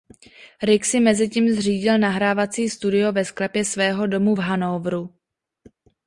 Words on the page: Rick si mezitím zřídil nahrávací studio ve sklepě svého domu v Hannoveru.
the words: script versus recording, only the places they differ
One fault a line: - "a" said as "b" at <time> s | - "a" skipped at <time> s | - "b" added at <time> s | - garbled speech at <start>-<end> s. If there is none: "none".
none